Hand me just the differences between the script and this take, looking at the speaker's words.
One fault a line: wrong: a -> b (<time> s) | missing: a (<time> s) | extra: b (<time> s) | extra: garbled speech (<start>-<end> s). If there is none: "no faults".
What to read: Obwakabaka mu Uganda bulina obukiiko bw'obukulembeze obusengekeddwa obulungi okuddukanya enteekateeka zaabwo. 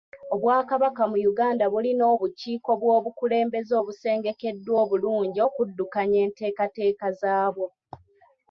no faults